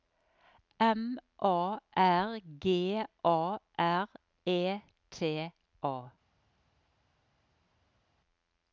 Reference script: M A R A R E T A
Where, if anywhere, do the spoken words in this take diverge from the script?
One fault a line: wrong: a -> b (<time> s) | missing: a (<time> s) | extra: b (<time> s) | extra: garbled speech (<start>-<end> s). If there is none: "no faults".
extra: G (2.4 s)